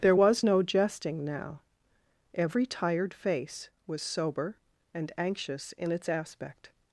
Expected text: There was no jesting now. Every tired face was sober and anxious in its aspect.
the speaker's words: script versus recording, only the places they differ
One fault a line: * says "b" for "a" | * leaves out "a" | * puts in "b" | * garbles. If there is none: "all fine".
all fine